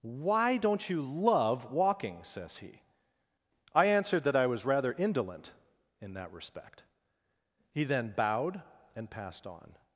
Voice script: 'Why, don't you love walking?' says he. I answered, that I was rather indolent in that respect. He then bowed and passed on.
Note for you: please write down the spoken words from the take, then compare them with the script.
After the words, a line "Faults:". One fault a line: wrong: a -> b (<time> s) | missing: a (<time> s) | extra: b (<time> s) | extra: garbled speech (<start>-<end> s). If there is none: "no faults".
'Why, don't you love walking?' says he. I answered, that I was rather indolent in that respect. He then bowed and passed on.
Faults:
no faults